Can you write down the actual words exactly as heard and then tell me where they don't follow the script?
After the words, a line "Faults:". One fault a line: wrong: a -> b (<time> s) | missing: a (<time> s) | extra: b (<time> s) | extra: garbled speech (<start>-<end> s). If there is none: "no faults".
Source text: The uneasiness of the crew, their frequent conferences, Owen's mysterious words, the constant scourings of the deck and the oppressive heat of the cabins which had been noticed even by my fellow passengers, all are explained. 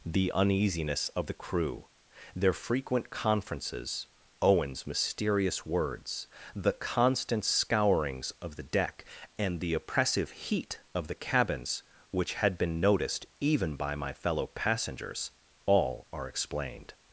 The uneasiness of the crew, their frequent conferences, Owen's mysterious words, the constant scourings of the deck and the oppressive heat of the cabins which had been noticed even by my fellow passengers, all are explained.
Faults:
no faults